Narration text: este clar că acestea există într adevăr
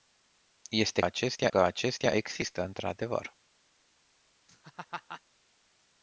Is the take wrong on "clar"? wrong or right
wrong